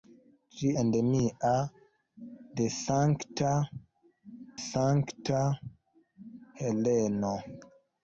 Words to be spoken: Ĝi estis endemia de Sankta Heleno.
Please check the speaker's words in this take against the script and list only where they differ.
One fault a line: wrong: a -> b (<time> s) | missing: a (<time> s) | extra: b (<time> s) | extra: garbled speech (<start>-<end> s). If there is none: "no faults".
missing: estis (0.7 s)
extra: Sankta (4.6 s)